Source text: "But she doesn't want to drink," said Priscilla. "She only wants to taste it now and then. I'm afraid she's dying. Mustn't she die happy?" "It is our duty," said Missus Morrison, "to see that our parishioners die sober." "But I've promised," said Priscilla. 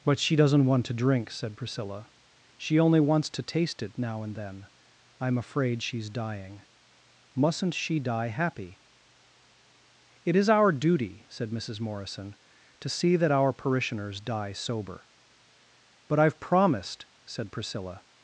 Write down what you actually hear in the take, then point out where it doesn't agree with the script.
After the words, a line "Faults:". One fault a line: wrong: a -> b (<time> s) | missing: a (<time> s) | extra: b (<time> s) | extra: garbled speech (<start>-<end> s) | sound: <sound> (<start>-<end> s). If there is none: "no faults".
"But she doesn't want to drink," said Priscilla. "She only wants to taste it now and then. I'm afraid she's dying. Mustn't she die happy?" "It is our duty," said Missus Morrison, "to see that our parishioners die sober." "But I've promised," said Priscilla.
Faults:
no faults